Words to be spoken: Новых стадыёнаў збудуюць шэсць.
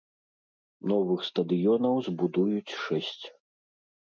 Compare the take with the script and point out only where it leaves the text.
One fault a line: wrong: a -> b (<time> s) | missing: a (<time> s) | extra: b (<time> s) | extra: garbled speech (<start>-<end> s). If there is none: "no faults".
no faults